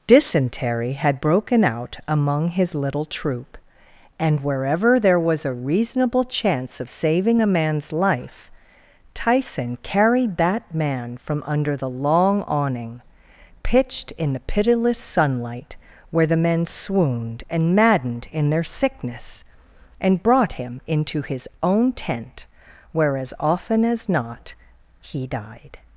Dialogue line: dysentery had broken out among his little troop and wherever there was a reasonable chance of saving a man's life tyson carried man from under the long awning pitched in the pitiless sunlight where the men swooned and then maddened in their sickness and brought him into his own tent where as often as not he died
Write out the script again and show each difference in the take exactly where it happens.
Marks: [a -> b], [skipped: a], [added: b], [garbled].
dysentery had broken out among his little troop and wherever there was a reasonable chance of saving a man's life tyson carried [added: that] man from under the long awning pitched in the pitiless sunlight where the men swooned and [skipped: then] maddened in their sickness and brought him into his own tent where as often as not he died